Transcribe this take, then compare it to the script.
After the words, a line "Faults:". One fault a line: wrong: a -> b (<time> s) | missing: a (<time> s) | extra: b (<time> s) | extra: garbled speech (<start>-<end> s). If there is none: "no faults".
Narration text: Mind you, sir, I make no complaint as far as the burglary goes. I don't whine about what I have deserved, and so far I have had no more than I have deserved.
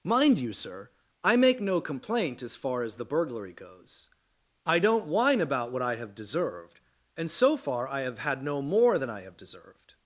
Mind you, sir, I make no complaint as far as the burglary goes. I don't whine about what I have deserved, and so far I have had no more than I have deserved.
Faults:
no faults